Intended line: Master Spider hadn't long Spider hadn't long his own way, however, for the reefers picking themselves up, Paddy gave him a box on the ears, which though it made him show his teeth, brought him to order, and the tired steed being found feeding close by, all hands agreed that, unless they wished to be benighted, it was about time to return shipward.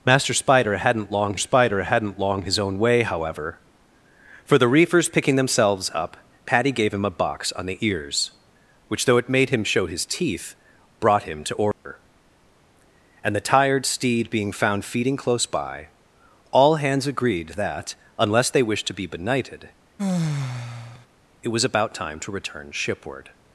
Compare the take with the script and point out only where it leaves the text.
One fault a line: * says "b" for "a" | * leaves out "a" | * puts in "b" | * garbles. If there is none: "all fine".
all fine